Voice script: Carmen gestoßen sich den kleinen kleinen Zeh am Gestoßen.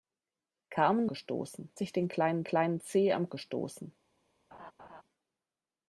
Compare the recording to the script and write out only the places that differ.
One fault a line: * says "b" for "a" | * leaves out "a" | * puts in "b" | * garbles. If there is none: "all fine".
all fine